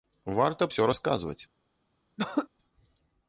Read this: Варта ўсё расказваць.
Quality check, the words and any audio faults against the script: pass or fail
fail